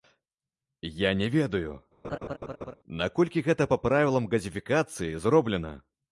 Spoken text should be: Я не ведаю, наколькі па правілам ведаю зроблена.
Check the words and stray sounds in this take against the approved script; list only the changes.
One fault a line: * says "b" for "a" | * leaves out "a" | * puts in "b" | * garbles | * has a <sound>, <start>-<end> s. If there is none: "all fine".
* has a laugh, 2.0-2.7 s
* puts in "гэта"
* says "газіфікацыі" for "ведаю"